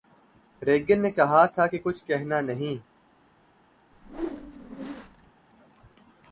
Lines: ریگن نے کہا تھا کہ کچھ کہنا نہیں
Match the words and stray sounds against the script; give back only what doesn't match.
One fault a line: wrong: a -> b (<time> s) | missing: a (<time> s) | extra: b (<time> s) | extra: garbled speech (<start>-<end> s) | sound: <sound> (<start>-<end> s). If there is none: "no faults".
sound: whoosh (3.9-5.3 s)